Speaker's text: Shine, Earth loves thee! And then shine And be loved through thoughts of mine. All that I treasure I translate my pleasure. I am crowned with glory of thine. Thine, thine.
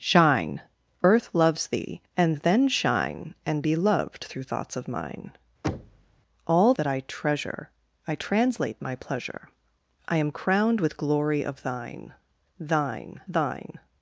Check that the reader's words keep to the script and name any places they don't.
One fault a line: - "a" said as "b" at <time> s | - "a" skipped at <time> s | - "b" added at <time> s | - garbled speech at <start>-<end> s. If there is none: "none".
none